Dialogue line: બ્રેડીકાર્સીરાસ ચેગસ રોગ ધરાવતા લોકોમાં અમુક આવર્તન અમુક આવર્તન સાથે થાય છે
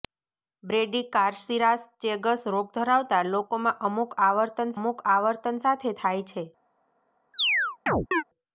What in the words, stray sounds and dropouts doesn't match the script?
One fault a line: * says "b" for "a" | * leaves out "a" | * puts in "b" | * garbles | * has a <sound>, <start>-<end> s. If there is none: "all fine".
* has a chirp, 7.3-8.2 s